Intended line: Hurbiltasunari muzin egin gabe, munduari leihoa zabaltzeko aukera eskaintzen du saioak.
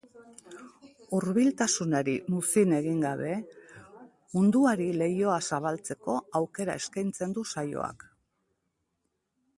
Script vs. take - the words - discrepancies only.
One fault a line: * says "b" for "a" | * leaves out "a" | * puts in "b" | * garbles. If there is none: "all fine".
all fine